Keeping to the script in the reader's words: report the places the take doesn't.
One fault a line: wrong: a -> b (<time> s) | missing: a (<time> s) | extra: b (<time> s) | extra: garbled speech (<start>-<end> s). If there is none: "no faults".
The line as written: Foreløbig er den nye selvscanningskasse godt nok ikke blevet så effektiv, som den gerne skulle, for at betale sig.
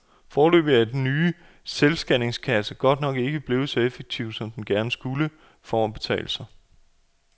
no faults